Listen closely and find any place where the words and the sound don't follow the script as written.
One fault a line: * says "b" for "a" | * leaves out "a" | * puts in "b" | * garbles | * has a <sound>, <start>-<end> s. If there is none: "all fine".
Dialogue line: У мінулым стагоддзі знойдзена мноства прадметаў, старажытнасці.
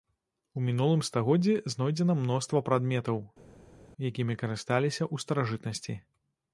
* puts in "якімі карысталіся ў"